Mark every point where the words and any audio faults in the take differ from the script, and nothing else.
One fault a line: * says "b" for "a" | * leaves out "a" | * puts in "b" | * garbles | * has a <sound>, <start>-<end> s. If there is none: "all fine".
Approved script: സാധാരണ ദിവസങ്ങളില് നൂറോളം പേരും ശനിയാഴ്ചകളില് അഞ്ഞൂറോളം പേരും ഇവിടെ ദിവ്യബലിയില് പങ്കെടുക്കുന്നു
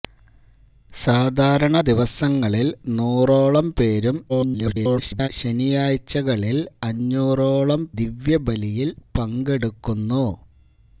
* garbles
* leaves out "പേരും ഇവിടെ"